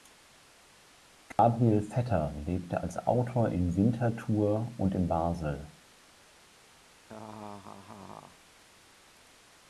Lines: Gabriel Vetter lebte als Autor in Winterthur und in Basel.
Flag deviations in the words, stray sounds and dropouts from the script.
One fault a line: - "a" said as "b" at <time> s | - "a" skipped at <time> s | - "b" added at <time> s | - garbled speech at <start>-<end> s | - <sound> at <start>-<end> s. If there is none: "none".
- dropout at 1.3-1.4 s
- laugh at 7.0-8.4 s